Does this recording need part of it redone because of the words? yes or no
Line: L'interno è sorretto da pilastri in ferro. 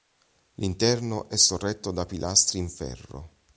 no